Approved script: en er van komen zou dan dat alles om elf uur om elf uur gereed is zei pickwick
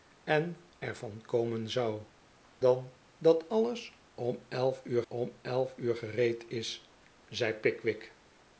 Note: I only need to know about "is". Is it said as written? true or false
true